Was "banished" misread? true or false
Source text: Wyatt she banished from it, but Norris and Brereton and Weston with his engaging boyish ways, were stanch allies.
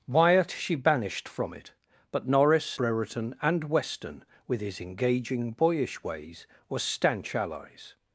false